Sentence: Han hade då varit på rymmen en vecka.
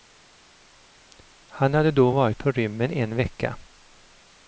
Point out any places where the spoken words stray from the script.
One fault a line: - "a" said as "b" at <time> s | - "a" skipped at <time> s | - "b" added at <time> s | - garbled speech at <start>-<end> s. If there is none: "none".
none